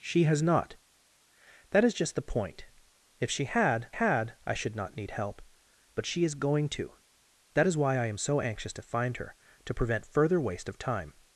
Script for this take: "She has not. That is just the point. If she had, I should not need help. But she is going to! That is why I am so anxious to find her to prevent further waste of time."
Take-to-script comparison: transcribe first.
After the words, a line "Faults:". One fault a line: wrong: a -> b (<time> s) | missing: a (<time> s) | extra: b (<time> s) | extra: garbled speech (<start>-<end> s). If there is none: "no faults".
"She has not. That is just the point. If she had had, I should not need help. But she is going to! That is why I am so anxious to find her to prevent further waste of time."
Faults:
extra: had (3.9 s)